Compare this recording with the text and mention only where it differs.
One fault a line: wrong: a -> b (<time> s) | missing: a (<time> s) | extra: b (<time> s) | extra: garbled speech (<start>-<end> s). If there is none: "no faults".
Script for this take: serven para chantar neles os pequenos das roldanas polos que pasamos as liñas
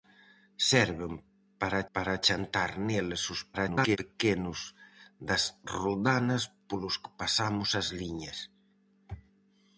extra: para (2.0 s)
extra: garbled speech (3.5-4.0 s)